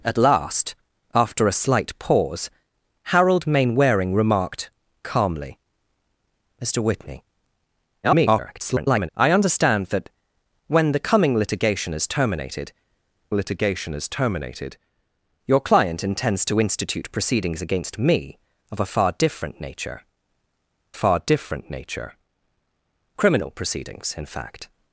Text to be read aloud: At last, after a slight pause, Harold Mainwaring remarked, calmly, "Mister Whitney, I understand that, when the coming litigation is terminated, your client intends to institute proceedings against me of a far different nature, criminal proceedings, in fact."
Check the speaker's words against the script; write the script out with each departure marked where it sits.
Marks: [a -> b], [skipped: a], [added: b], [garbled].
At last, after a slight pause, Harold Mainwaring remarked, calmly, "Mister Whitney, [garbled] I understand that, when the coming litigation is terminated, [added: litigation is terminated] your client intends to institute proceedings against me of a far different nature, [added: far different nature] criminal proceedings, in fact."